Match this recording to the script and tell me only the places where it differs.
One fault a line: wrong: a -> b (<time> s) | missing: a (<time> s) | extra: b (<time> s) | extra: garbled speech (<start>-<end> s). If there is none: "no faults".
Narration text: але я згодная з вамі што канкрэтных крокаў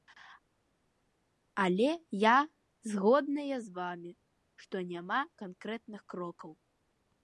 extra: няма (4.9 s)